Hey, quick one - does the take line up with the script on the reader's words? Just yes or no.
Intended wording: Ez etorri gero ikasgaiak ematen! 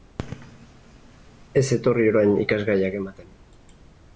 no